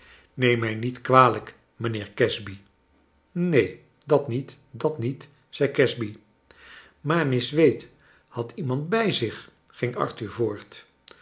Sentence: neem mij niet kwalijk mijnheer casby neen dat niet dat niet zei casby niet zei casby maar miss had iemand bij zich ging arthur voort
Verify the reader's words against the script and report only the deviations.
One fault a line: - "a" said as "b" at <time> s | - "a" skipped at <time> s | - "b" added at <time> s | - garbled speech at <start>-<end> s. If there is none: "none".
- "niet zei casby" skipped at 6.2 s
- "wade" added at 7.5 s